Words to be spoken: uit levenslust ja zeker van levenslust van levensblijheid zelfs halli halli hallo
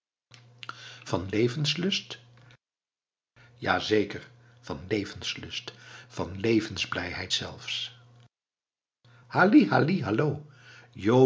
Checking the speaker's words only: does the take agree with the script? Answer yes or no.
no